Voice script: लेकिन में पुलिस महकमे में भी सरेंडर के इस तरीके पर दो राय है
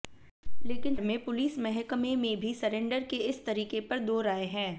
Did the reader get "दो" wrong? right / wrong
right